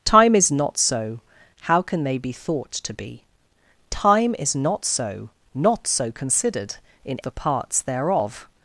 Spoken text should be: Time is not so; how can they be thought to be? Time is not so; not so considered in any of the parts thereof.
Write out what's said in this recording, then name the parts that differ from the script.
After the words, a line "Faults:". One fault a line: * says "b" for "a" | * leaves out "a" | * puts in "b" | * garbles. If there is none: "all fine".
Time is not so; how can they be thought to be? Time is not so; not so considered in the parts thereof.
Faults:
* leaves out "any of"